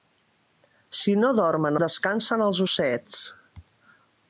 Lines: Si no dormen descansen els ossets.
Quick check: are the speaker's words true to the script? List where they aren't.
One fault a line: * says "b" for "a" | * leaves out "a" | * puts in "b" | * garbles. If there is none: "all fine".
all fine